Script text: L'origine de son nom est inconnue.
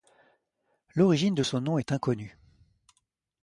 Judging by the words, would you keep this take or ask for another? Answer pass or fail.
pass